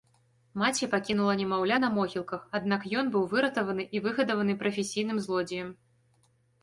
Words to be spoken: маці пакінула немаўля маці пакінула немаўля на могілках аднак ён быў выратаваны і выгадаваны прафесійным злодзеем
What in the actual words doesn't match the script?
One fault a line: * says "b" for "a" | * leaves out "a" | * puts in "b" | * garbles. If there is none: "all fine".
* leaves out "маці пакінула немаўля"